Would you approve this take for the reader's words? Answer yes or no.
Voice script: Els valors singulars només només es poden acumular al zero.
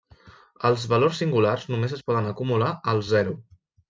no